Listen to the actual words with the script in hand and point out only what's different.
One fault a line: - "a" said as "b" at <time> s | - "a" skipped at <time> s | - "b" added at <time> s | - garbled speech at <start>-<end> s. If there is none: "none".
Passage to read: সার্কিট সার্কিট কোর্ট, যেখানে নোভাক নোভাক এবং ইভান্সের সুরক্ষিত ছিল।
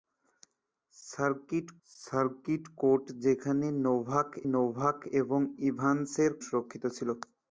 none